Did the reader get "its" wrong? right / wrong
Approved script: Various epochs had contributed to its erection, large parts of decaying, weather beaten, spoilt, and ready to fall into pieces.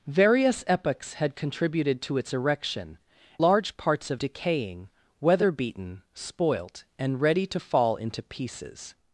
right